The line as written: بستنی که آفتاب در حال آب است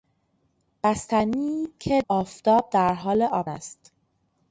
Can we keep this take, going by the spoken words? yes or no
yes